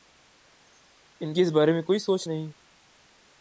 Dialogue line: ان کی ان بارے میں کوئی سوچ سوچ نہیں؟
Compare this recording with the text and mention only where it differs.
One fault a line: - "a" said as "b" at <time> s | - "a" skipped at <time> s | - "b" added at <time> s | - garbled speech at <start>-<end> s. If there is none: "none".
- "ان" said as "اس" at 1.4 s
- "سوچ" skipped at 2.3 s